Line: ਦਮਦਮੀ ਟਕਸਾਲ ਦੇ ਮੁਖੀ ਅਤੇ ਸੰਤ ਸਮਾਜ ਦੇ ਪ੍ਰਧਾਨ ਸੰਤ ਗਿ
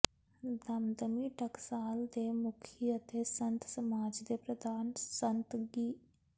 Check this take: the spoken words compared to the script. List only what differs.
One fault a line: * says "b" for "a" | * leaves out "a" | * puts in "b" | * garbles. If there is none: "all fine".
all fine